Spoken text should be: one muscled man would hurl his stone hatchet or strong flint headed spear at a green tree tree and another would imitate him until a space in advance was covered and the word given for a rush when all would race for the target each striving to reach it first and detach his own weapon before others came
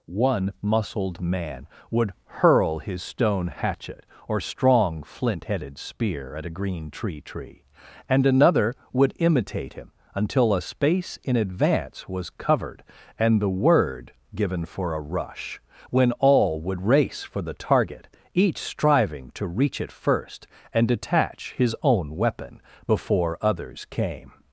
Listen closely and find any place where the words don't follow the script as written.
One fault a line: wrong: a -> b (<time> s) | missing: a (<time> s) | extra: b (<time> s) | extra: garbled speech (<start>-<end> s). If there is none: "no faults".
no faults